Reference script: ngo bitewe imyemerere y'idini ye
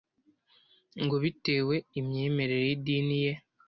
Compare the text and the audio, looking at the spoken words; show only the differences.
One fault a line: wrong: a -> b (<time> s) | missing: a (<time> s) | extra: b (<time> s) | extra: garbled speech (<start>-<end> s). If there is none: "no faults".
no faults